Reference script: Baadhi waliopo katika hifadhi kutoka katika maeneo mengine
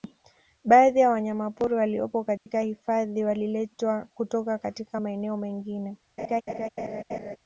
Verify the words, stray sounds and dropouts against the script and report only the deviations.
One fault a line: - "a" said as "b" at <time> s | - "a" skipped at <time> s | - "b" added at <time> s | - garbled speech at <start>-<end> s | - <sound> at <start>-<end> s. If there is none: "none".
- "ya wanyamapori" added at 1.0 s
- dropout at 2.4-2.5 s
- "waliletwa" added at 3.2 s
- laugh at 6.2-7.4 s